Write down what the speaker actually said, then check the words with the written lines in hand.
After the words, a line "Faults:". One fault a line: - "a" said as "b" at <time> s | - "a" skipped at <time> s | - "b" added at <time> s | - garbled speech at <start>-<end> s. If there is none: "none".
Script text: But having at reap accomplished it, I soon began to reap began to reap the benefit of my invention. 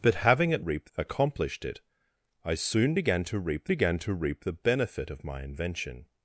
But having at reap accomplished it, I soon began to reap began to reap the benefit of my invention.
Faults:
none